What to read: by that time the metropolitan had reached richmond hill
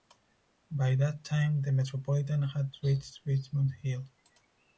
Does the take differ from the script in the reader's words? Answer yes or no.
no